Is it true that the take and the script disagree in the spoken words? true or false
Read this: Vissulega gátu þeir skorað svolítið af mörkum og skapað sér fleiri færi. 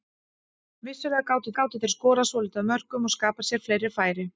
true